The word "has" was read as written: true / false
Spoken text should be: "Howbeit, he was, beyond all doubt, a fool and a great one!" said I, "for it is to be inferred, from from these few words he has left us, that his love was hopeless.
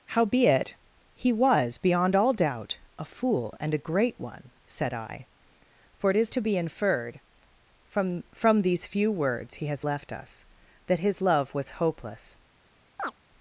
true